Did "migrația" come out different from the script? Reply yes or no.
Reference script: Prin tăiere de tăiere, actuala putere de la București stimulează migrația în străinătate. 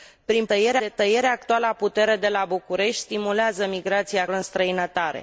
no